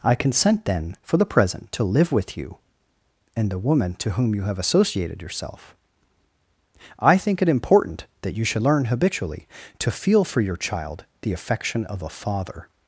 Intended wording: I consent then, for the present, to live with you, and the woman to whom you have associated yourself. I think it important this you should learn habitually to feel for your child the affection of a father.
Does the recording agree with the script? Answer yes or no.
no